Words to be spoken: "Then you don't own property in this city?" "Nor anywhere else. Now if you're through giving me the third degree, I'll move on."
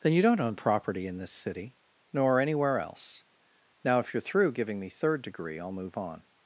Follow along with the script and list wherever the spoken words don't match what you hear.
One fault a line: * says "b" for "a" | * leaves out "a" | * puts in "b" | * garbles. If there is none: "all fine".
* leaves out "the"